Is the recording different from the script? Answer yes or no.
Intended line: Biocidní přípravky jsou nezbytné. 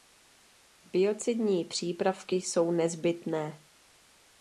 no